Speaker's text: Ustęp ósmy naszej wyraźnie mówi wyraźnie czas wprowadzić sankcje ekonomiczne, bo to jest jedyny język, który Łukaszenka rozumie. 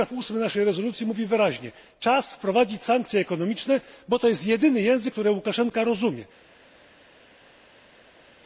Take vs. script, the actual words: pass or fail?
fail